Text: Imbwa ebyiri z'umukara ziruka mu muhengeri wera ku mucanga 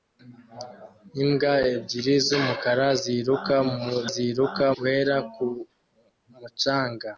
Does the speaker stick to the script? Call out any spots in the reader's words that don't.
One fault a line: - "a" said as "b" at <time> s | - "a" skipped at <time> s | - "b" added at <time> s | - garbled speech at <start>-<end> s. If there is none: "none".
- "muhengeri" said as "ziruka" at 4.1 s